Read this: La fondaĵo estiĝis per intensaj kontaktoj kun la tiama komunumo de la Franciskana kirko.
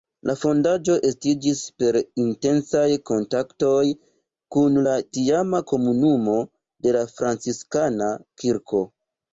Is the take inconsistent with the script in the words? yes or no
no